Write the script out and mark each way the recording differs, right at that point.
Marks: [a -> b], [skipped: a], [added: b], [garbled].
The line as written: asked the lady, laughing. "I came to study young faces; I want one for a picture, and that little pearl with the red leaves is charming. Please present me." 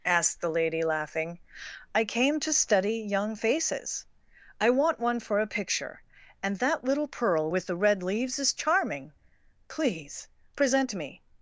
asked the lady, laughing. "I came to study young faces; I want one for a picture, and that little pearl with the red leaves is charming. Please present me."